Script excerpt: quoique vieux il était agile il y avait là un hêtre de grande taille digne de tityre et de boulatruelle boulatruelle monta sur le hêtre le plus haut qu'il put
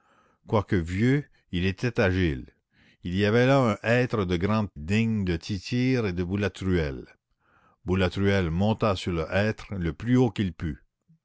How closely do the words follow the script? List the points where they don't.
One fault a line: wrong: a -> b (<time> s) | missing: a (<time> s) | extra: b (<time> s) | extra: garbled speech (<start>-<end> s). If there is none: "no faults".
missing: taille (4.7 s)